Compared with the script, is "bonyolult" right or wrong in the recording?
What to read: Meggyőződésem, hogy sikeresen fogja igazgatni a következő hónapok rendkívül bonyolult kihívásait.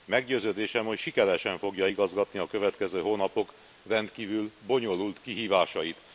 right